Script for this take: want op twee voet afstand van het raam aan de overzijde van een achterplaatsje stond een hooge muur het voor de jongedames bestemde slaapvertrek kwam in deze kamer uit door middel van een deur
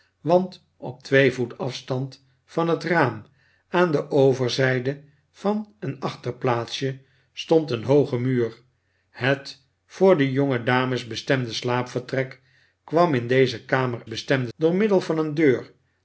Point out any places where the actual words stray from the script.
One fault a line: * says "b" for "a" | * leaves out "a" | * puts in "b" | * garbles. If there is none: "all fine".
* says "bestemde" for "uit"